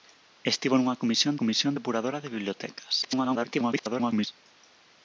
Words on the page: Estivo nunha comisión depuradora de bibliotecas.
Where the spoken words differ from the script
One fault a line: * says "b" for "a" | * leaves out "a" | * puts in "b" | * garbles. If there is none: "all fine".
* puts in "comisión"
* garbles